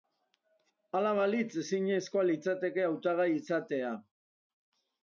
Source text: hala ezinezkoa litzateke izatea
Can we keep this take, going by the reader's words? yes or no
no